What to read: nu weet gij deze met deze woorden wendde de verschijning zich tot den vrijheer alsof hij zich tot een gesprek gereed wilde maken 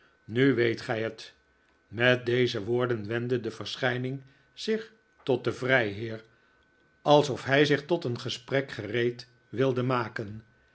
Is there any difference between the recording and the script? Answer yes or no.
yes